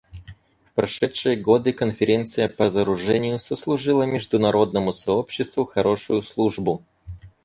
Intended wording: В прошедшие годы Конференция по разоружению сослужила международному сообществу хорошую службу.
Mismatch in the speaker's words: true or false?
false